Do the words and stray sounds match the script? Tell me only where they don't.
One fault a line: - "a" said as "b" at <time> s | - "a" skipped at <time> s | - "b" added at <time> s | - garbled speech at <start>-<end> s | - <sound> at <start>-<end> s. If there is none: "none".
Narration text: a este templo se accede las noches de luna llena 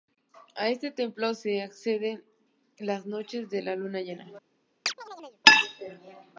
- chirp at 4.9-5.4 s